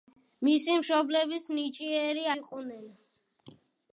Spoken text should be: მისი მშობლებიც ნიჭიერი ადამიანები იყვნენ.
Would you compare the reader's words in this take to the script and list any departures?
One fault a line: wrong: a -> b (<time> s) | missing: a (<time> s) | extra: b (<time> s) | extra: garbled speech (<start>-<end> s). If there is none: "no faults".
missing: ადამიანები (2.2 s)